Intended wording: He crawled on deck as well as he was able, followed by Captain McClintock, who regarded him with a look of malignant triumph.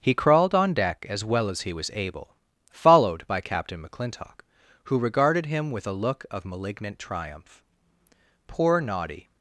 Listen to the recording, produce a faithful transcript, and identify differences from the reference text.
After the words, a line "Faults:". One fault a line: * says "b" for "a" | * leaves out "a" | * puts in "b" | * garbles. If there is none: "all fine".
He crawled on deck as well as he was able, followed by Captain McClintock, who regarded him with a look of malignant triumph. Poor Noddy
Faults:
* puts in "Poor Noddy"